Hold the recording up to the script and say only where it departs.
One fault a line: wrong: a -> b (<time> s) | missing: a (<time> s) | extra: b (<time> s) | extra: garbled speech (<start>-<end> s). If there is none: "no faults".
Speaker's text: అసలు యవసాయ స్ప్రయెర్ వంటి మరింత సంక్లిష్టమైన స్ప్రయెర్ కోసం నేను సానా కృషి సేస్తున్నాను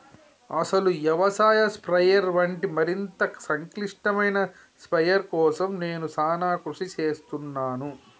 no faults